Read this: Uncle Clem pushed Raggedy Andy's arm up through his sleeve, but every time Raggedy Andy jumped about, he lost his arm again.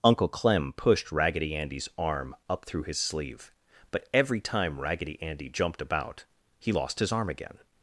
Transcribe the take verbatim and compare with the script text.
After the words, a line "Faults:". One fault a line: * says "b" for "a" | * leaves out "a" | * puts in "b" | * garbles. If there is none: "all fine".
Uncle Clem pushed Raggedy Andy's arm up through his sleeve, but every time Raggedy Andy jumped about, he lost his arm again.
Faults:
all fine